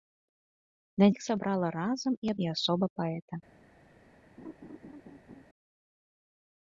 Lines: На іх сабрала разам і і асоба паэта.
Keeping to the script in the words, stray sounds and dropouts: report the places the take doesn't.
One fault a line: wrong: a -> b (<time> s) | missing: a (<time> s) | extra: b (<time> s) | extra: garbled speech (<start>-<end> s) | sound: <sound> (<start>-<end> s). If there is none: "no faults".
sound: laugh (4.4-5.5 s)